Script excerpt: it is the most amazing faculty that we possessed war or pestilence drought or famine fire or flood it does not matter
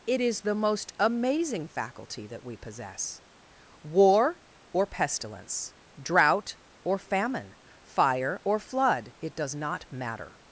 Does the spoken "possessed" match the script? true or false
false